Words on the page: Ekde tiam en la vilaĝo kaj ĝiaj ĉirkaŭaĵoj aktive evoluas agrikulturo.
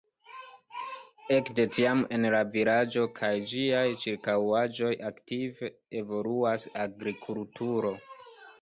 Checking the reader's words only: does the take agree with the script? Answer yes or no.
yes